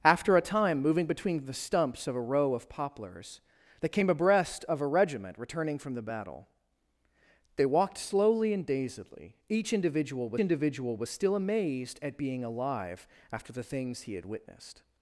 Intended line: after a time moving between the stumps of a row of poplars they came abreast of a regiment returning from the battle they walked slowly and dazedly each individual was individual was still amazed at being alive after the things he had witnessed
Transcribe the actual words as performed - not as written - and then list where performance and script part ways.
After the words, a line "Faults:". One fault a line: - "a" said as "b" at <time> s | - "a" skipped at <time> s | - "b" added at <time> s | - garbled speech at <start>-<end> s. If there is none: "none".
after a time moving between the stumps of a row of poplars they came abreast of a regiment returning from the battle they walked slowly and dazedly each individual was individual was still amazed at being alive after the things he had witnessed
Faults:
none